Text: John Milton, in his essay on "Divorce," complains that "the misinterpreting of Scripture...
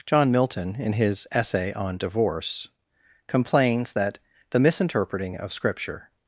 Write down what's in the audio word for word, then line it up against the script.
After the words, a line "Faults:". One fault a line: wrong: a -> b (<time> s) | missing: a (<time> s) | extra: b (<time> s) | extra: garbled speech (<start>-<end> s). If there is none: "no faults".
John Milton, in his essay on "Divorce," complains that "the misinterpreting of Scripture...
Faults:
no faults